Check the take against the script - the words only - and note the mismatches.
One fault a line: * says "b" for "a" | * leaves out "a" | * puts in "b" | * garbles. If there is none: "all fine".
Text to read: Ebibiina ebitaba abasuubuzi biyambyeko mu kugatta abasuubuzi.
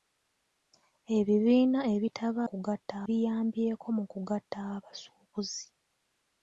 * says "kugatta" for "abasuubuzi"